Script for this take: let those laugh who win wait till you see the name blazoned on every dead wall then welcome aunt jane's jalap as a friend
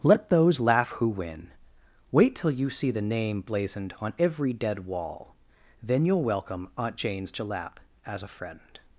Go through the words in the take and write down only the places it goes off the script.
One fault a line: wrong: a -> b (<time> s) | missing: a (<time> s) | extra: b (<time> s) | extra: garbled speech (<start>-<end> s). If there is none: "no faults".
extra: you'll (6.0 s)